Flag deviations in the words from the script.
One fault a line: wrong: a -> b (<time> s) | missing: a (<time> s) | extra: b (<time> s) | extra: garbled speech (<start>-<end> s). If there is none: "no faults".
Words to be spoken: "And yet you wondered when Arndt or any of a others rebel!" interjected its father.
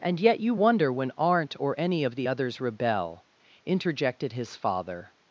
wrong: wondered -> wonder (0.5 s)
wrong: a -> the (2.1 s)
wrong: its -> his (4.3 s)